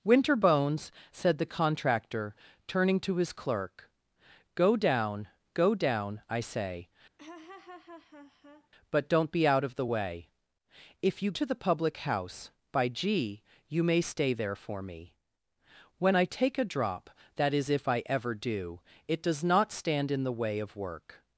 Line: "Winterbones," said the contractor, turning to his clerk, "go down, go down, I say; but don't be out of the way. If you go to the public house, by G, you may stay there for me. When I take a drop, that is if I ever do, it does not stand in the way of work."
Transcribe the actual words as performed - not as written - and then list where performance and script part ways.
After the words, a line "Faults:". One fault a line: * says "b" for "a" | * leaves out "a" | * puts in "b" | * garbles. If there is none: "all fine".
"Winterbones," said the contractor, turning to his clerk, "go down, go down, I say; but don't be out of the way. If you to the public house, by G, you may stay there for me. When I take a drop, that is if I ever do, it does not stand in the way of work."
Faults:
* leaves out "go"